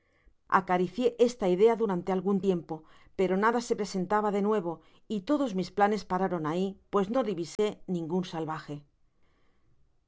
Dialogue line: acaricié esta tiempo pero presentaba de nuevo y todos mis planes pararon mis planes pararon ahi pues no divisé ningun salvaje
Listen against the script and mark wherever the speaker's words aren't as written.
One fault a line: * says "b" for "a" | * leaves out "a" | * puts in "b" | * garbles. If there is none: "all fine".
* puts in "idea durante algun"
* puts in "nada se"
* leaves out "mis planes pararon"